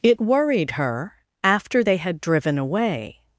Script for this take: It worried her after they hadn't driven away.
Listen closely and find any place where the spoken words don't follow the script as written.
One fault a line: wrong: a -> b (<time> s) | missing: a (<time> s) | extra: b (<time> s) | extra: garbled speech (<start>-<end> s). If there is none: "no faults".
wrong: hadn't -> had (2.0 s)